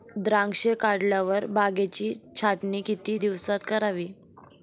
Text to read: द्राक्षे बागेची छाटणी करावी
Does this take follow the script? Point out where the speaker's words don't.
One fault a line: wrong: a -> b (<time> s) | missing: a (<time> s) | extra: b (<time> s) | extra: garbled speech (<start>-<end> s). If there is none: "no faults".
extra: काढल्यावर (0.8 s)
extra: किती दिवसात (2.8 s)